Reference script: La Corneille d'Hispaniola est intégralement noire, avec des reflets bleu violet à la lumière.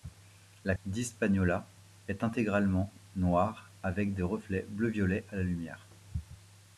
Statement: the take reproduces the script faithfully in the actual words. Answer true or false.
false